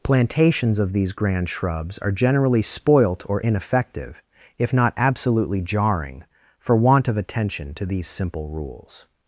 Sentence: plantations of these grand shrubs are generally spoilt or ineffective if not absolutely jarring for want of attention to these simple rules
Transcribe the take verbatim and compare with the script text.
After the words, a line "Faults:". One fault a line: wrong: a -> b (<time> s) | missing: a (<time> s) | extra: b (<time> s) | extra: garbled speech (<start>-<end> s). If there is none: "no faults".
plantations of these grand shrubs are generally spoilt or ineffective if not absolutely jarring for want of attention to these simple rules
Faults:
no faults